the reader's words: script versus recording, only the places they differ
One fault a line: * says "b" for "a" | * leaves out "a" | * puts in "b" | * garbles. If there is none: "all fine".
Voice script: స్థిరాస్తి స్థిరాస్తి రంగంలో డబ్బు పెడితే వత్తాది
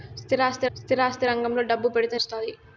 all fine